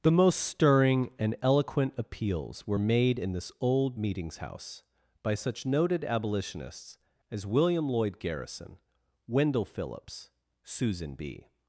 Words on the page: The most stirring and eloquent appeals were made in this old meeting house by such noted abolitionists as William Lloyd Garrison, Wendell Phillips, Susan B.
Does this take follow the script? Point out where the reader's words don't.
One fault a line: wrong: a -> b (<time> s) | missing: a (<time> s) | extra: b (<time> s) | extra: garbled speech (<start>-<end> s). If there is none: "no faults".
wrong: meeting -> meetings (4.0 s)